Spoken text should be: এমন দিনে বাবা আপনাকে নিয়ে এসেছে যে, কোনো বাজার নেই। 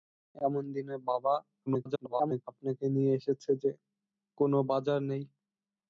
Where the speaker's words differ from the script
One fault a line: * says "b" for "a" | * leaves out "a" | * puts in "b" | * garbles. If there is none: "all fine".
* garbles